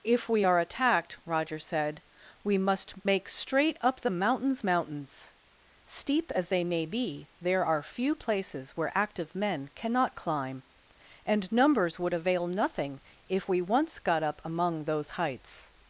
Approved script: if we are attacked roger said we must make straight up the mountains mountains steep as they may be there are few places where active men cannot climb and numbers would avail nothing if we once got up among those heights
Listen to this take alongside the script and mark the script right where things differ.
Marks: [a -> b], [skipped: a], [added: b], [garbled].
if we are attacked roger said we must make straight up the mountains mountains steep as they may be there are few places where active men cannot climb and numbers would avail nothing if we once got up among those heights